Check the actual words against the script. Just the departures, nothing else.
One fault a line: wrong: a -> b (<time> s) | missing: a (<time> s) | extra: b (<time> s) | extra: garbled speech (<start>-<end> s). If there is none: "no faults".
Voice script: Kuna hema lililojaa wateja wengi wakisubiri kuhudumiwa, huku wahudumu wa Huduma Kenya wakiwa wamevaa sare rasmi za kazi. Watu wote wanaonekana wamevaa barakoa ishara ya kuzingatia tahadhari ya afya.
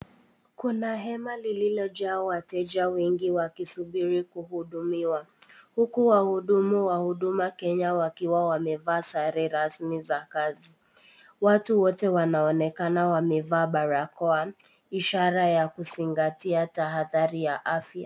no faults